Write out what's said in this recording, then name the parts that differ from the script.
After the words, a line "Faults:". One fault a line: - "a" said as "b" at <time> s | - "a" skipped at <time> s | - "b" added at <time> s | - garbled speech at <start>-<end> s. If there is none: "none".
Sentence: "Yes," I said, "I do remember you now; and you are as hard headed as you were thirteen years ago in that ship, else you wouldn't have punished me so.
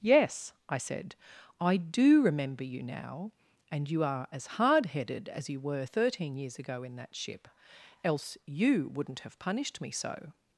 "Yes," I said, "I do remember you now; and you are as hard headed as you were thirteen years ago in that ship, else you wouldn't have punished me so.
Faults:
none